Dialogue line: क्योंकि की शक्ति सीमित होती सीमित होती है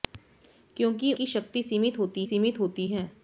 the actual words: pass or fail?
pass